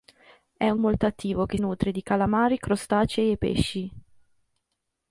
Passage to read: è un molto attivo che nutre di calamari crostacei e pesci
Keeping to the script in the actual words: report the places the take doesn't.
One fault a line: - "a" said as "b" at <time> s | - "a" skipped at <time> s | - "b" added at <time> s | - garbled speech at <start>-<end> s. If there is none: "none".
none